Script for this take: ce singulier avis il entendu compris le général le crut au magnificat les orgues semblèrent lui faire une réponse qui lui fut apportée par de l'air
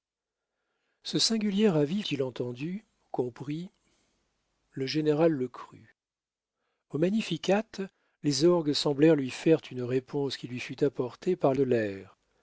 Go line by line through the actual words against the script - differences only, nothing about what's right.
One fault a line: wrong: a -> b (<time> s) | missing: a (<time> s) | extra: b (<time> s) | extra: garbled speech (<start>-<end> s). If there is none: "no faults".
no faults